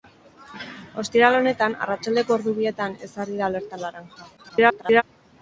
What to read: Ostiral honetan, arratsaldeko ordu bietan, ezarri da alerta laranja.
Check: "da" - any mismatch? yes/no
no